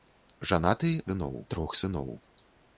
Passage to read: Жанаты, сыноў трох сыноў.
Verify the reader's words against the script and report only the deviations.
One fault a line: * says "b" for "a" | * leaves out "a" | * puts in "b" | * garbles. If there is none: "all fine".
all fine